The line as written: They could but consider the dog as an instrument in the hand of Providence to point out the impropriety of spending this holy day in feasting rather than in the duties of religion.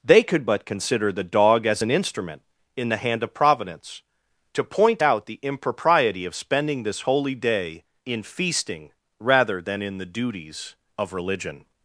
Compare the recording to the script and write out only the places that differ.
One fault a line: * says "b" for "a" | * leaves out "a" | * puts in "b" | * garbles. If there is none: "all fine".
all fine